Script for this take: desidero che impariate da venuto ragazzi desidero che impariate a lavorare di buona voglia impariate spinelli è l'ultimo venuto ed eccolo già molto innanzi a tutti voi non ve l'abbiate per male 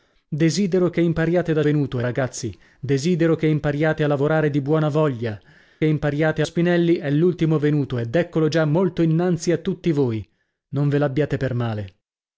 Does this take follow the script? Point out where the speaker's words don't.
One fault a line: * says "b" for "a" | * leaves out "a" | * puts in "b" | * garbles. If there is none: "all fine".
all fine